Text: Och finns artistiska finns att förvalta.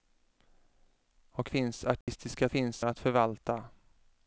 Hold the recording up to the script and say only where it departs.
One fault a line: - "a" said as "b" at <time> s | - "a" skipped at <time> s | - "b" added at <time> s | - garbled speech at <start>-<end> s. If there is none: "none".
none